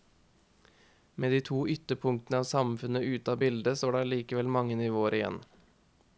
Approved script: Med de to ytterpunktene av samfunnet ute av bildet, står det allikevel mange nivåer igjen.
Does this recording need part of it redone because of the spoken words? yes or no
no